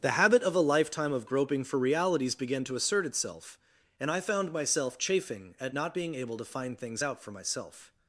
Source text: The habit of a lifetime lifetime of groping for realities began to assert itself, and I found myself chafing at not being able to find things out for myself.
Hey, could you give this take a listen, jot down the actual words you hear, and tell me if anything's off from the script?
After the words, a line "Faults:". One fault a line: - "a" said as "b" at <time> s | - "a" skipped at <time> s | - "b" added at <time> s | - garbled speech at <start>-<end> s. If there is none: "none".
The habit of a lifetime of groping for realities began to assert itself, and I found myself chafing at not being able to find things out for myself.
Faults:
- "lifetime" skipped at 1.1 s